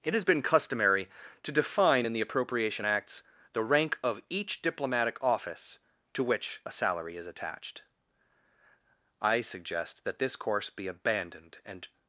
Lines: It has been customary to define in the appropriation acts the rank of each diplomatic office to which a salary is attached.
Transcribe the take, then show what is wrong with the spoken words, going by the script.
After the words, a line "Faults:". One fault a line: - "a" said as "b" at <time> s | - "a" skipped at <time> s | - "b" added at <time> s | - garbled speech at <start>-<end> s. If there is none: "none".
It has been customary to define in the appropriation acts the rank of each diplomatic office to which a salary is attached. I suggest that this course be abandoned and
Faults:
- "I suggest that this course be abandoned and" added at 9.2 s